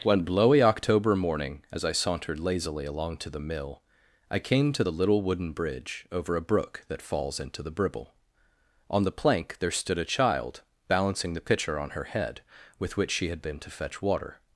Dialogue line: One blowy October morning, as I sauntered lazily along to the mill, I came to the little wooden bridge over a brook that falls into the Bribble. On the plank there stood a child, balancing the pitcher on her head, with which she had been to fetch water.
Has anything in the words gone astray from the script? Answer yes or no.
no